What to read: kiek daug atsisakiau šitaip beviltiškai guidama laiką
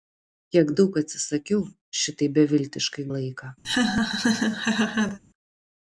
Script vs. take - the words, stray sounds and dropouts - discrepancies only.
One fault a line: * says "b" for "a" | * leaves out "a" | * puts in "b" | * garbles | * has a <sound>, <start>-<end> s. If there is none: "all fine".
* leaves out "guidama"
* has a laugh, 3.6-5.2 s